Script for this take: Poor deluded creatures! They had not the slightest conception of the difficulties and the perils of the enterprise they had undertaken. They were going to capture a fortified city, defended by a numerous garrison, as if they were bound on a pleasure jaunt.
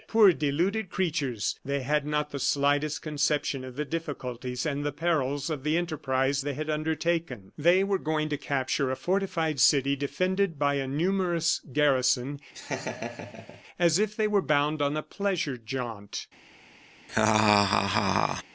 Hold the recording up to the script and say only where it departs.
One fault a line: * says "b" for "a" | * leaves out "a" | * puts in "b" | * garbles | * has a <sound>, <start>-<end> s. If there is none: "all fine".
* has a laugh, 12.5-13.6 s
* has a laugh, 17.1-18.4 s